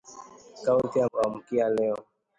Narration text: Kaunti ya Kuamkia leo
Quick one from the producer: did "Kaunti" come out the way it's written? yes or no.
yes